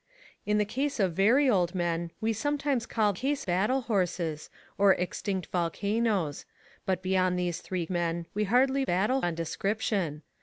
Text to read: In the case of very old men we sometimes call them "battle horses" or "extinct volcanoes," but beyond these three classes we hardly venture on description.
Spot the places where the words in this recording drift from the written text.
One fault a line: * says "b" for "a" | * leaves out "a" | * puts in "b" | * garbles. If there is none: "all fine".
* says "case" for "them"
* says "men" for "classes"
* says "battle" for "venture"